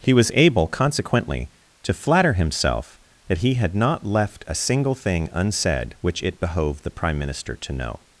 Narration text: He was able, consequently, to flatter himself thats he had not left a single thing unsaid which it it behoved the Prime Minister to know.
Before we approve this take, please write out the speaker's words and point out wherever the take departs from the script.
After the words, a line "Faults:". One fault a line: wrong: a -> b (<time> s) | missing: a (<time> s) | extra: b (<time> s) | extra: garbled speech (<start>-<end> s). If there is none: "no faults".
He was able, consequently, to flatter himself that he had not left a single thing unsaid which it behoved the Prime Minister to know.
Faults:
wrong: thats -> that (3.3 s)
missing: it (6.4 s)